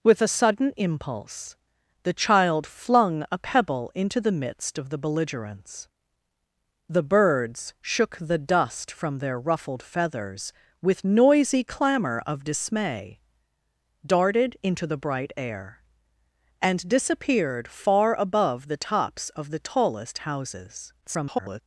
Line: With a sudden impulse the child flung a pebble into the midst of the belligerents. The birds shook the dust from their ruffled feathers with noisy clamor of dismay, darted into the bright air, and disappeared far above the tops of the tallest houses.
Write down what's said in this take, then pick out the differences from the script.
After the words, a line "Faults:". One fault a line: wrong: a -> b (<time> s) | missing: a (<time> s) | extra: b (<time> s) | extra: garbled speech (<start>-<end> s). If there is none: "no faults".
With a sudden impulse the child flung a pebble into the midst of the belligerents. The birds shook the dust from their ruffled feathers with noisy clamor of dismay, darted into the bright air, and disappeared far above the tops of the tallest houses. [garbled]
Faults:
extra: garbled speech (21.0-21.6 s)